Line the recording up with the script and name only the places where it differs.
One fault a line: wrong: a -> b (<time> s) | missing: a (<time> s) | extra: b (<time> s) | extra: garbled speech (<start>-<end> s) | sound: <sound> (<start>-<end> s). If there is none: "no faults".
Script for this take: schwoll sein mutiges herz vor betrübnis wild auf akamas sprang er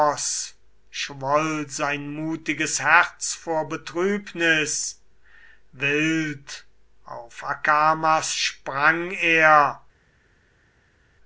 no faults